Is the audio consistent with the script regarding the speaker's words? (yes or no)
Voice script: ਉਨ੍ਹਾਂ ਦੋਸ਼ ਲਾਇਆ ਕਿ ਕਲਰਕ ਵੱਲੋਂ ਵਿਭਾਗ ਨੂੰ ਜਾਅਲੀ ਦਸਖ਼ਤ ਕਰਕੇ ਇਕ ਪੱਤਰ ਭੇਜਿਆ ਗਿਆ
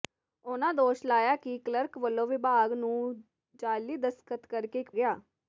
no